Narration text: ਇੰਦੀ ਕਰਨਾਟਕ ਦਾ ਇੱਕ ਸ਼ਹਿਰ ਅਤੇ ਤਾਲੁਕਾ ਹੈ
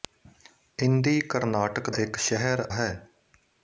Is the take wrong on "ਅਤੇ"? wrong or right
wrong